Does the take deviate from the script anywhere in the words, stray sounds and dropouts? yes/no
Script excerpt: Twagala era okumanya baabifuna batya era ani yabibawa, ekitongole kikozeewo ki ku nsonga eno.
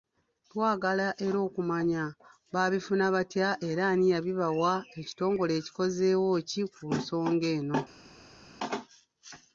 no